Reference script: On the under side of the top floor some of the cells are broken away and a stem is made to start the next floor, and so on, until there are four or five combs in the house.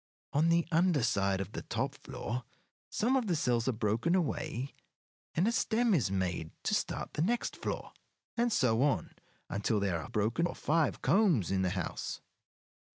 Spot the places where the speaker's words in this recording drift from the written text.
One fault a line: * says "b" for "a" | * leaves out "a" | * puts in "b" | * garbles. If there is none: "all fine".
* says "broken" for "four"